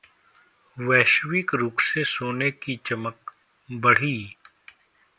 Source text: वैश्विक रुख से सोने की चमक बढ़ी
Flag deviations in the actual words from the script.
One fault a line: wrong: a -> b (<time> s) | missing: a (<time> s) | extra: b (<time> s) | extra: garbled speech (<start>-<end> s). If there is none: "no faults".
no faults